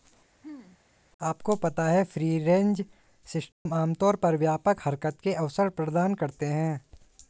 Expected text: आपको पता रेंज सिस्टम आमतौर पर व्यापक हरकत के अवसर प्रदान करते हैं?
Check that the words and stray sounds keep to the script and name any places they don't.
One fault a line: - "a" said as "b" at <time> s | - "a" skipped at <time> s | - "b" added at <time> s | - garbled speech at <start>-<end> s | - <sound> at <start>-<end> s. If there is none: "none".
- throat clearing at 0.4-0.8 s
- "है फ्री" added at 1.8 s
- dropout at 3.5-3.7 s